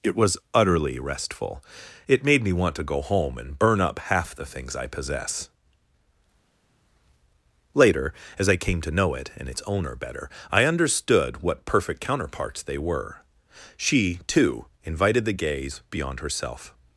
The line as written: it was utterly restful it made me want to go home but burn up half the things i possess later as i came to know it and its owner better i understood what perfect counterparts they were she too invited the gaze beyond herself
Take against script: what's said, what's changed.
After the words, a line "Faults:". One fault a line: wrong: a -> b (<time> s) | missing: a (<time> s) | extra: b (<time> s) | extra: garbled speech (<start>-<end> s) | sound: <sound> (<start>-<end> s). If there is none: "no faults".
it was utterly restful it made me want to go home and burn up half the things i possess later as i came to know it and its owner better i understood what perfect counterparts they were she too invited the gaze beyond herself
Faults:
wrong: but -> and (3.4 s)